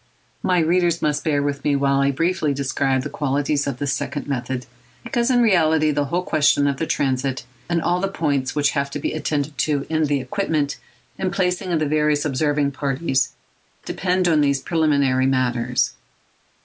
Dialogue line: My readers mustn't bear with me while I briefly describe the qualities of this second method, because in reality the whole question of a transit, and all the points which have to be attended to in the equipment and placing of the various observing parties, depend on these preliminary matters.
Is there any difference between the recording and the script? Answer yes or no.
yes